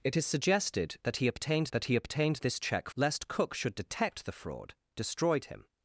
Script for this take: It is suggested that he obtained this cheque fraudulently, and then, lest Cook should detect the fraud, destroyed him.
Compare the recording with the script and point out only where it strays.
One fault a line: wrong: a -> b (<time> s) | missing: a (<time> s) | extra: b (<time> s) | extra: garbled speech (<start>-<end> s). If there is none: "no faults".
wrong: this cheque fraudulently and then -> that he obtained this cheque (1.7 s)